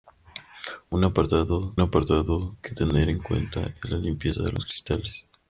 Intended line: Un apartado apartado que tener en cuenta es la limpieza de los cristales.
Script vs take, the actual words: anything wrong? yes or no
no